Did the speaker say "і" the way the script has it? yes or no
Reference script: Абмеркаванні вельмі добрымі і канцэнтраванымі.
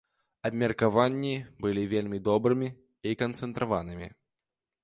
yes